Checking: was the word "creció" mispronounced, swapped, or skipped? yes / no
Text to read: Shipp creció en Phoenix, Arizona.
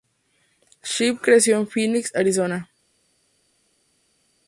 no